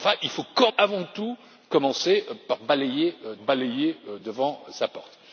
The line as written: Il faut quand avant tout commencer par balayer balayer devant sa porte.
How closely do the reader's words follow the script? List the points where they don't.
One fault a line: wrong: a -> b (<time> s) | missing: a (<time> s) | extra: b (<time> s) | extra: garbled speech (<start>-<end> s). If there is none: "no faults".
no faults